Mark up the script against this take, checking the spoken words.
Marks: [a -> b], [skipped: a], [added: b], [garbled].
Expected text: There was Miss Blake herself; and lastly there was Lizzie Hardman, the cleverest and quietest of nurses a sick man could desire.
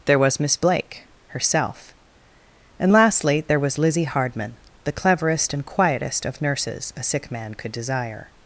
There was Miss Blake herself; and lastly there was Lizzie Hardman, the cleverest and quietest of nurses a sick man could desire.